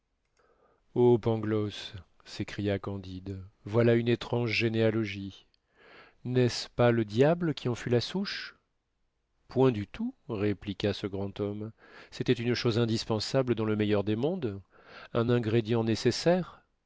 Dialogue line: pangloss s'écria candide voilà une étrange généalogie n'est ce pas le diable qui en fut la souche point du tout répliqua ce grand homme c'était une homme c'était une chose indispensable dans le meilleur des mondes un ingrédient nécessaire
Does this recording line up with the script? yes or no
no